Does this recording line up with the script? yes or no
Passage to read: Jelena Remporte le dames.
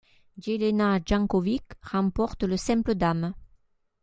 no